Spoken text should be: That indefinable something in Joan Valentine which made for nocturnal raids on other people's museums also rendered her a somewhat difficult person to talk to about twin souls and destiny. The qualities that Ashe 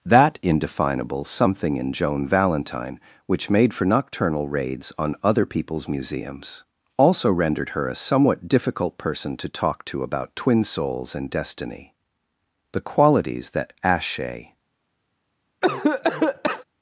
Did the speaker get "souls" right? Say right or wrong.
right